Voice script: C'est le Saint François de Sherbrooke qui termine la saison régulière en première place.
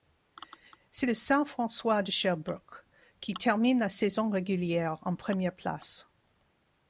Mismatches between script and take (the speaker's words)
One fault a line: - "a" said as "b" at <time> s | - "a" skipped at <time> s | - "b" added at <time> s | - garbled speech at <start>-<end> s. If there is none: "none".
none